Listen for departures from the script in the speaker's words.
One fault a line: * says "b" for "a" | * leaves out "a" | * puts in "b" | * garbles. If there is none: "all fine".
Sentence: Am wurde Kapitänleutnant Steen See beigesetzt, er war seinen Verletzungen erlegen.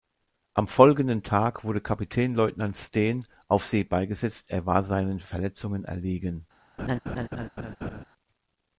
* puts in "folgenden Tag"
* puts in "auf"